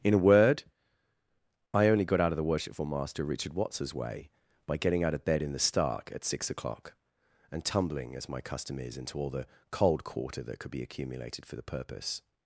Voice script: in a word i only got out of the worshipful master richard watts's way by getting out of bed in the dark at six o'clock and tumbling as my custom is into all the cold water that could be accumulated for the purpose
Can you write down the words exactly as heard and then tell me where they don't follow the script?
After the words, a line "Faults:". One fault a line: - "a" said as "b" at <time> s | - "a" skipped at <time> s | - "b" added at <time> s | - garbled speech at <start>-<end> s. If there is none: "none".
in a word i only got out of the worshipful master richard watts's way by getting out of bed in the stark at six o'clock and tumbling as my custom is into all the cold quarter that could be accumulated for the purpose
Faults:
- "dark" said as "stark" at 5.6 s
- "water" said as "quarter" at 10.0 s